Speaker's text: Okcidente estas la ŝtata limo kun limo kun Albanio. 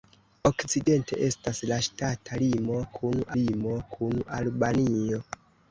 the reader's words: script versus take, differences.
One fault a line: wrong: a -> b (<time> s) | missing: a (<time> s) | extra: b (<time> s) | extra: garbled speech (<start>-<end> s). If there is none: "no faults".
no faults